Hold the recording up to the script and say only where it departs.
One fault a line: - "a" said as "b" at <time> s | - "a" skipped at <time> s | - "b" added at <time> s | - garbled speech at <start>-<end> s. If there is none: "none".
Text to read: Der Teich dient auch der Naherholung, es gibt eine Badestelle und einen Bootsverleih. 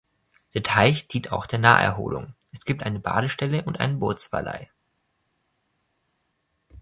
none